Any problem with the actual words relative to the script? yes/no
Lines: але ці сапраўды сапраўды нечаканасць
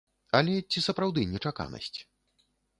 yes